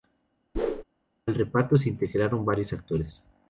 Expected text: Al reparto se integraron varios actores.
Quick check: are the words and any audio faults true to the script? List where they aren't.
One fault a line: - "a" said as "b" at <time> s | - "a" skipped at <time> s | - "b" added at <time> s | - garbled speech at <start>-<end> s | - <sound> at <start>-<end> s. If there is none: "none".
- whoosh at 0.5-0.8 s